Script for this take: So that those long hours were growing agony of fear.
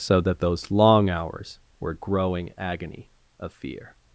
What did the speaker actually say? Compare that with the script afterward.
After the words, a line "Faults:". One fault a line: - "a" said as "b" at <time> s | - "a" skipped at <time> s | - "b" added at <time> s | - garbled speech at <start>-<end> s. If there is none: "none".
So that those long hours were growing agony of fear.
Faults:
none